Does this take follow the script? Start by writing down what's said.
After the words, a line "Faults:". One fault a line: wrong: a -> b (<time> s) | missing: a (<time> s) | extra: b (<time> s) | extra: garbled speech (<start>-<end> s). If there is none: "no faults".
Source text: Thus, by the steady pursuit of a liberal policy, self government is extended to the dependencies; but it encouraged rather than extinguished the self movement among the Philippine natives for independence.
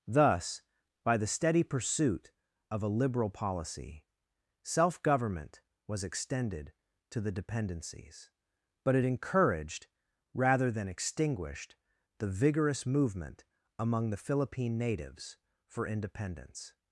Thus, by the steady pursuit of a liberal policy, self government was extended to the dependencies; but it encouraged rather than extinguished the vigorous movement among the Philippine natives for independence.
Faults:
wrong: is -> was (5.9 s)
wrong: self -> vigorous (12.3 s)